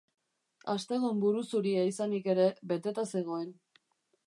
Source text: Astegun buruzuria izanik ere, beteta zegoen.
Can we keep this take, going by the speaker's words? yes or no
yes